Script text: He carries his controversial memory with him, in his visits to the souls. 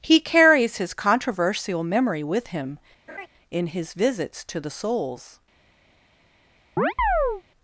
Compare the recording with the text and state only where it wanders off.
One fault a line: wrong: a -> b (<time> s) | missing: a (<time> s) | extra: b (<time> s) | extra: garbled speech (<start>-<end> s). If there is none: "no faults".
no faults